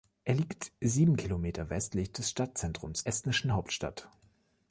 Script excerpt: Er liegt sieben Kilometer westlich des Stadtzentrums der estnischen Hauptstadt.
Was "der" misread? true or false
true